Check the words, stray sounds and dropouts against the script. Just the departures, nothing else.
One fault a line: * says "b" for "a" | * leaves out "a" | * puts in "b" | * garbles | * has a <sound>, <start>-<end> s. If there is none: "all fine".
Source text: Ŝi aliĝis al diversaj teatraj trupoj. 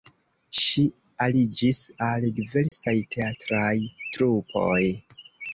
* has a dropout, 2.7-2.7 s